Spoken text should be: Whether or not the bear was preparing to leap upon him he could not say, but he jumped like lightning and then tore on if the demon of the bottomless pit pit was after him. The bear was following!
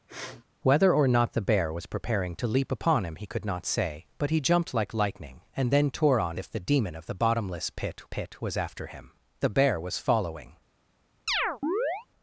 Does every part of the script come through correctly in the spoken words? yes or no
yes